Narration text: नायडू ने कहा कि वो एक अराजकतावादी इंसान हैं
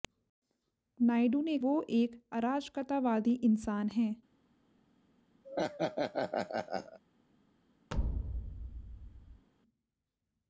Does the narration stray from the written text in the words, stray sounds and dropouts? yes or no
yes